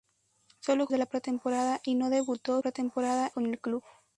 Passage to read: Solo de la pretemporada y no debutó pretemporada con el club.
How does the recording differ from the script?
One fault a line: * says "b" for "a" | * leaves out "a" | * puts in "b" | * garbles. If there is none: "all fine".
all fine